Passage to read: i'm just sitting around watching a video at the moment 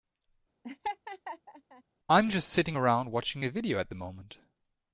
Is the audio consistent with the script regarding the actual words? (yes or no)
yes